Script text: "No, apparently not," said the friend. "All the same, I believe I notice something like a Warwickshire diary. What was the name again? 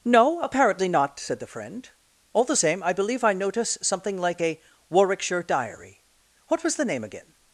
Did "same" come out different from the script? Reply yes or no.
no